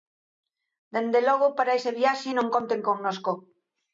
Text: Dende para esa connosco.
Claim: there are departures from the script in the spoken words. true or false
true